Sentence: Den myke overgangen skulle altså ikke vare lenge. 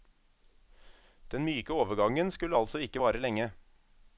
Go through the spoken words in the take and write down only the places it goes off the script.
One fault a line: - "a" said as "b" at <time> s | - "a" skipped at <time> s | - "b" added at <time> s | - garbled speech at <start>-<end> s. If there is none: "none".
none